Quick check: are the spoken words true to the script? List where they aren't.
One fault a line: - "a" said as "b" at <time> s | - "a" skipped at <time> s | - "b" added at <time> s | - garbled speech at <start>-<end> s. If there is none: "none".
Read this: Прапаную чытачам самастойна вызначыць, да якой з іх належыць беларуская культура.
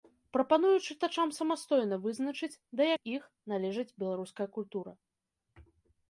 - "якой" skipped at 2.9 s